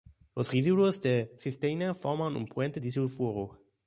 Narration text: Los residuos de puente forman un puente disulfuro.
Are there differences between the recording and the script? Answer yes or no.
yes